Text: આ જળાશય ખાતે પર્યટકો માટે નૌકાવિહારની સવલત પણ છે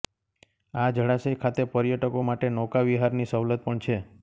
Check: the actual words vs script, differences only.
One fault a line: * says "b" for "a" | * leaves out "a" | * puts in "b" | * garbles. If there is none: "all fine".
all fine